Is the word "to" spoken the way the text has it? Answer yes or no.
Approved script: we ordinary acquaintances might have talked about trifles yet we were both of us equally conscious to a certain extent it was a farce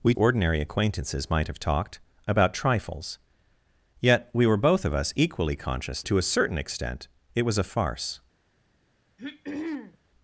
yes